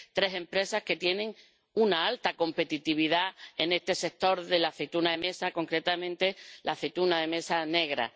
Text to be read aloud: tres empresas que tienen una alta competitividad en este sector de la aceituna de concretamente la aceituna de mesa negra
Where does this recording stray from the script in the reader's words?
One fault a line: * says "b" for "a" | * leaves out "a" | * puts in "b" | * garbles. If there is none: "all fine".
* puts in "mesa"